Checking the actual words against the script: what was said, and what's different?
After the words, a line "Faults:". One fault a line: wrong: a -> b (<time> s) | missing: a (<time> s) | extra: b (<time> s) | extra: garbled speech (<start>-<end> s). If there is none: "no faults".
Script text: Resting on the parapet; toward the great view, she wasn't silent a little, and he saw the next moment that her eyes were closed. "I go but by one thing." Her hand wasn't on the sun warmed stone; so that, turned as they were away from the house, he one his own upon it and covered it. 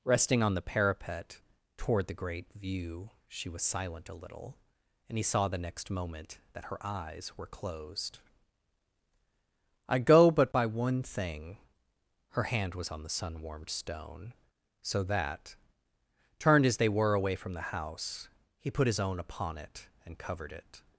Resting on the parapet; toward the great view, she was silent a little, and he saw the next moment that her eyes were closed. "I go but by one thing." Her hand was on the sun warmed stone; so that, turned as they were away from the house, he put his own upon it and covered it.
Faults:
wrong: wasn't -> was (3.5 s)
wrong: wasn't -> was (12.7 s)
wrong: one -> put (18.7 s)